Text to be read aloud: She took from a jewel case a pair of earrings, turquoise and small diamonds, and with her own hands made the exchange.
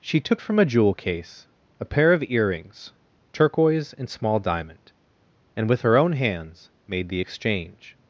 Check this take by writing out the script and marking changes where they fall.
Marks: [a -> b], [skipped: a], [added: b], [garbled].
She took from a jewel case a pair of earrings, turquoise and small [diamonds, -> diamond] and with her own hands made the exchange.